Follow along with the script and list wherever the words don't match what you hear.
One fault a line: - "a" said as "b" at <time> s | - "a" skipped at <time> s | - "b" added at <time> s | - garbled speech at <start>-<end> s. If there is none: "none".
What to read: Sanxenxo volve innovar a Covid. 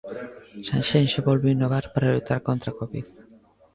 - "para loitar contra" added at 1.9 s